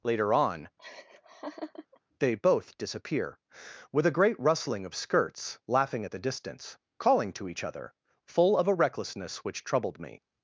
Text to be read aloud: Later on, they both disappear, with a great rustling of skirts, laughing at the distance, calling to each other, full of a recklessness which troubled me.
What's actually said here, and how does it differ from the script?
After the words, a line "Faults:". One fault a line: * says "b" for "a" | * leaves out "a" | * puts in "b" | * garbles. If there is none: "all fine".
Later on, they both disappear, with a great rustling of skirts, laughing at the distance, calling to each other, full of a recklessness which troubled me.
Faults:
all fine